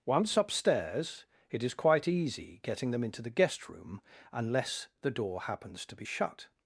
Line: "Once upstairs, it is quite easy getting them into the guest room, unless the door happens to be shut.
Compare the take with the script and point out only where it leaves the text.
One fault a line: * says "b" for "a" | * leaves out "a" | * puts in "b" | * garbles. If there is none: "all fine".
all fine